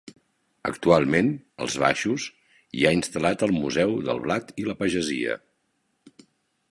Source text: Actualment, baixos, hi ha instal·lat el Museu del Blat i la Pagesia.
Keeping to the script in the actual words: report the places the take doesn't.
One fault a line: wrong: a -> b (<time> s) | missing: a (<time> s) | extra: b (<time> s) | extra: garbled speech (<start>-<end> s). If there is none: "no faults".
extra: als (1.7 s)